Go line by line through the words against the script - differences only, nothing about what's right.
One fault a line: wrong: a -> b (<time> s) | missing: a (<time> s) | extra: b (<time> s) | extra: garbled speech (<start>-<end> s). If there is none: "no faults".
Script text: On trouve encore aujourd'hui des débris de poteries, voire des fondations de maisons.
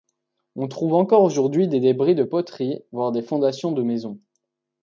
no faults